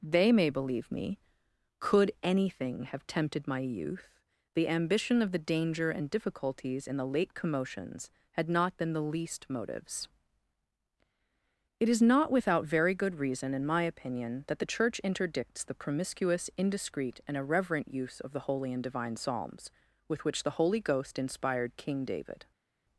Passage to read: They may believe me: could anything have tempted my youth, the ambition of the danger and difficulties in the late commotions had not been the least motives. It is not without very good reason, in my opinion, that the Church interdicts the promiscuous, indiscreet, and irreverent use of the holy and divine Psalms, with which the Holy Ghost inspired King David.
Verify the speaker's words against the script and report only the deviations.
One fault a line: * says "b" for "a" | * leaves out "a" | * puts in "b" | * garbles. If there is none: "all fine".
all fine